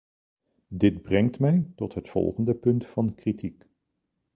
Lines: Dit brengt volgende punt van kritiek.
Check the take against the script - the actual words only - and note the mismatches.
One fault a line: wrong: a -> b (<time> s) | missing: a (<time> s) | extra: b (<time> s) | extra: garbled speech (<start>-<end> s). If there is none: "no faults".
extra: mij tot het (1.4 s)